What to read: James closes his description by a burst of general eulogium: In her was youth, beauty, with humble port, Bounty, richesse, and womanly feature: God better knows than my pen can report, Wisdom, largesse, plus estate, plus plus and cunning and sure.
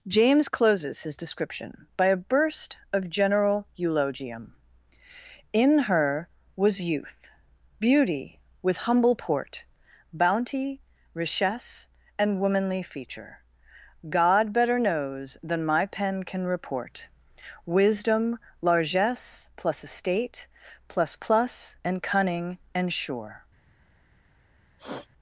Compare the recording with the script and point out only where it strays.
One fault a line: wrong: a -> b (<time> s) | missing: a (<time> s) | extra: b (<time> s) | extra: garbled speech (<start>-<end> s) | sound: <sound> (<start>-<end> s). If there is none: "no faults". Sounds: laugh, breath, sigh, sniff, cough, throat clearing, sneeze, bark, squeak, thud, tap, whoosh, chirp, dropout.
sound: sniff (24.8-25.1 s)